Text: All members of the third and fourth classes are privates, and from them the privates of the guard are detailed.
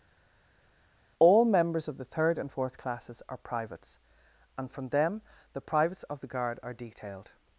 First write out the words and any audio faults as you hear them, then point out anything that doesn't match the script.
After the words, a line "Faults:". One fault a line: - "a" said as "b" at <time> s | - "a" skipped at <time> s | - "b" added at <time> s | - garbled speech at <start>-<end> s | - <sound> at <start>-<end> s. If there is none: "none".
All members of the third and fourth classes are privates, and from them the privates of the guard are detailed.
Faults:
none